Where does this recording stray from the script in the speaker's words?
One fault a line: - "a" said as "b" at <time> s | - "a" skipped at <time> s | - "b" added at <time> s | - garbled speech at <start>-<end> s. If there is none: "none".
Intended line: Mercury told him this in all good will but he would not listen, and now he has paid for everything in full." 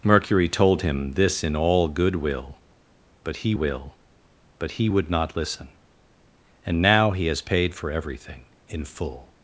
- "will but he" added at 3.5 s